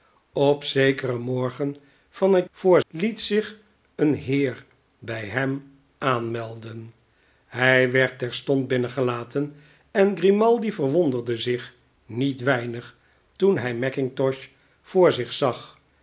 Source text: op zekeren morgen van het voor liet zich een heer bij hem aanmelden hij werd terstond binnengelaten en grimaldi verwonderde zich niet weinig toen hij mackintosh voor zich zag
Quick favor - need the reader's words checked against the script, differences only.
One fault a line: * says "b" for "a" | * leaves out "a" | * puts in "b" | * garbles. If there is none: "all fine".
all fine